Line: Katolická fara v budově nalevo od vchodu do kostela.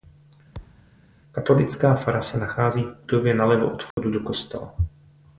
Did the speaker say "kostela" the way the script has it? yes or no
yes